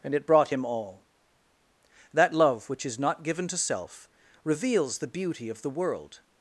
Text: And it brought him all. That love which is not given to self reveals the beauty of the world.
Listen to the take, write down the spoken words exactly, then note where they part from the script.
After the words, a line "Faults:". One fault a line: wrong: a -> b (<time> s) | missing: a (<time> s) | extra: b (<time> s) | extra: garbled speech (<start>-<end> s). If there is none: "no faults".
And it brought him all. That love which is not given to self reveals the beauty of the world.
Faults:
no faults